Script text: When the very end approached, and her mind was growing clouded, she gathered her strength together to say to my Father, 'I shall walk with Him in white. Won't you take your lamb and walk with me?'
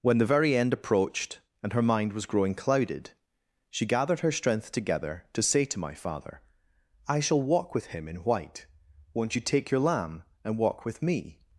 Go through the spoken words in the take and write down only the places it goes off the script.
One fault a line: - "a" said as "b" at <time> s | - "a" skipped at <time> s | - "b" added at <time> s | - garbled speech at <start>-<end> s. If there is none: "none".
none